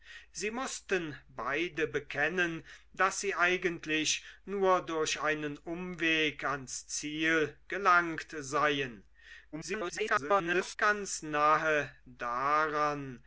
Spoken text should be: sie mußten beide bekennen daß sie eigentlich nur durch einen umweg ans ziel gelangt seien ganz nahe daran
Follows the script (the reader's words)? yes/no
no